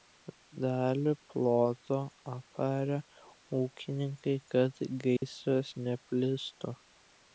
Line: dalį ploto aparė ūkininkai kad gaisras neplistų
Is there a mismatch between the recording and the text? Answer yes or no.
no